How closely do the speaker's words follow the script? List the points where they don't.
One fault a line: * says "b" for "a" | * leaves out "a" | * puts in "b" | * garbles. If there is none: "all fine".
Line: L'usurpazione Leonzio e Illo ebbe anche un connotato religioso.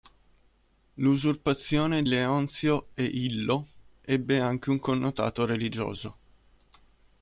all fine